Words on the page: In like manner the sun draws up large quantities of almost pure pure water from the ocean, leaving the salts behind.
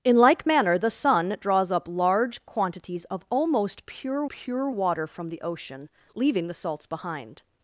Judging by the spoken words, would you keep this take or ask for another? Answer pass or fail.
pass